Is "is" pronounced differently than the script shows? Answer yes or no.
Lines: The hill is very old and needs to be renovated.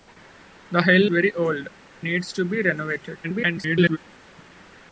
yes